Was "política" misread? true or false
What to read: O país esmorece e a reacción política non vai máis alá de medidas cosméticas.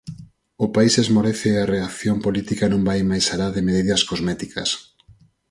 false